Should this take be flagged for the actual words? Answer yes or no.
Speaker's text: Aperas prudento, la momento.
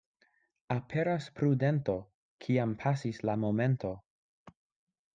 yes